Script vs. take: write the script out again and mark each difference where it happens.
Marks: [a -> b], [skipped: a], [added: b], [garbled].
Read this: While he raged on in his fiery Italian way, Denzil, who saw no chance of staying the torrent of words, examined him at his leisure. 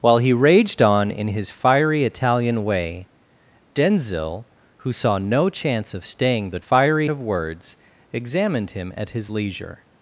While he raged on in his fiery Italian way, Denzil, who saw no chance of staying the [torrent -> fiery] of words, examined him at his leisure.